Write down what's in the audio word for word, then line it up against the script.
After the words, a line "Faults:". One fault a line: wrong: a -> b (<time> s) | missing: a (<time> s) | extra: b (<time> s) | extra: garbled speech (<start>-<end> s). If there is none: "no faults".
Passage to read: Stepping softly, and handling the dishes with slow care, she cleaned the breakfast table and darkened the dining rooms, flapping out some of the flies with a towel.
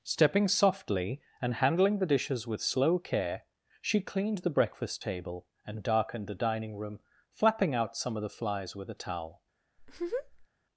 Stepping softly, and handling the dishes with slow care, she cleaned the breakfast table and darkened the dining room, flapping out some of the flies with a towel.
Faults:
wrong: rooms -> room (6.8 s)